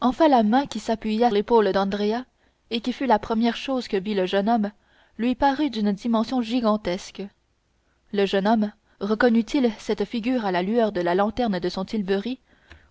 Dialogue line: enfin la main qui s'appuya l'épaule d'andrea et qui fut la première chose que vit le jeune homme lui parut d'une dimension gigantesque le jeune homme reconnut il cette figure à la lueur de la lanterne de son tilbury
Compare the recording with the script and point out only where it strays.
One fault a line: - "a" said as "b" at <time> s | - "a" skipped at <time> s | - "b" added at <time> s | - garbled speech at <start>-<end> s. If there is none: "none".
none